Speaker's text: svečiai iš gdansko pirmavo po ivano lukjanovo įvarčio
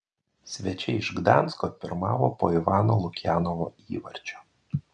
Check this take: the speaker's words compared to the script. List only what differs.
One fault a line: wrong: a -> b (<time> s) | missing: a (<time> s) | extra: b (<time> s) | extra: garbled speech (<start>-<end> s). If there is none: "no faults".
no faults